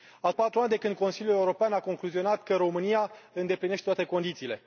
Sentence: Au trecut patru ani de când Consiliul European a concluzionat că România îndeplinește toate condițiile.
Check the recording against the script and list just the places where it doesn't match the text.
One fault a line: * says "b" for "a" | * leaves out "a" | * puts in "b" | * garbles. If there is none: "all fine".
* leaves out "trecut"